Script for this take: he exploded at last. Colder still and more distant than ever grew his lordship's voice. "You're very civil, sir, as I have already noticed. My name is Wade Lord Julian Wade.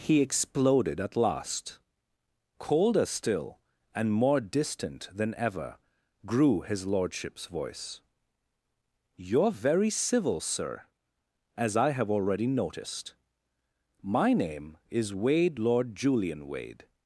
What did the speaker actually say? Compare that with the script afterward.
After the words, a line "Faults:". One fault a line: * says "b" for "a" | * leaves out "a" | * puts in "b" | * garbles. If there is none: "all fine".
he exploded at last. Colder still and more distant than ever grew his lordship's voice. "You're very civil, sir, as I have already noticed. My name is Wade Lord Julian Wade.
Faults:
all fine